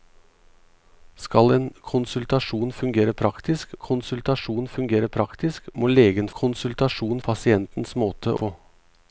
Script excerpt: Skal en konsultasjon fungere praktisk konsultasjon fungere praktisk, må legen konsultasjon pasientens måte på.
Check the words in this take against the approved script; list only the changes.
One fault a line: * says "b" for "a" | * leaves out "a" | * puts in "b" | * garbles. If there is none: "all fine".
all fine